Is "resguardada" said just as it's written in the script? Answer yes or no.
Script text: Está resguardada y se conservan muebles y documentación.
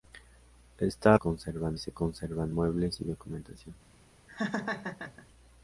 no